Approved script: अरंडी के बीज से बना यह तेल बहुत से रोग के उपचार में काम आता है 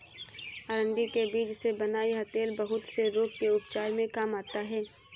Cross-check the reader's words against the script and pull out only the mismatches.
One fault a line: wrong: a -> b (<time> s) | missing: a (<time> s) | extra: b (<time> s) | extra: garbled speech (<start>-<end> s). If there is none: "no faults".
no faults